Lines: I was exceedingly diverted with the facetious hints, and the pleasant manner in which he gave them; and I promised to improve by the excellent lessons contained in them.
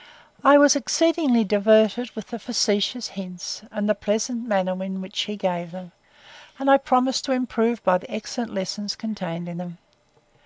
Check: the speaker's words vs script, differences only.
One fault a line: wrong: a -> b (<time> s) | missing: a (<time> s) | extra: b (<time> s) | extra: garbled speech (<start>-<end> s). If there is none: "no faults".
no faults